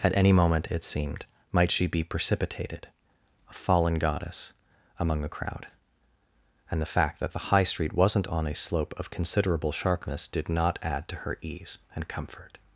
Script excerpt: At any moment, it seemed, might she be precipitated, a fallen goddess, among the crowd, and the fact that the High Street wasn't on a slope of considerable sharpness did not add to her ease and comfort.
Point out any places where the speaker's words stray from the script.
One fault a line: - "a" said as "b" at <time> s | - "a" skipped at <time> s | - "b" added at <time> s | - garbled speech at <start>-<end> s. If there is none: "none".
none